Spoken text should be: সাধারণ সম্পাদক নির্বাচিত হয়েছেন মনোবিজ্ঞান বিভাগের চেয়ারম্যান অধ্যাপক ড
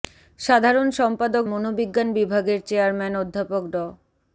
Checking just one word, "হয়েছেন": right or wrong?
wrong